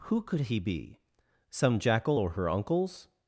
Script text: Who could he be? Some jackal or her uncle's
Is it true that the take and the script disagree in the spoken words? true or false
false